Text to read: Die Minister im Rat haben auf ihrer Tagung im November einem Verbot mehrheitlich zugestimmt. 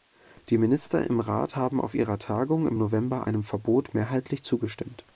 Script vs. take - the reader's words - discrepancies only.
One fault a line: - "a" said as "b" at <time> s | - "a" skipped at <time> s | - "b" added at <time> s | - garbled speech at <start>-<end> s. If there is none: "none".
none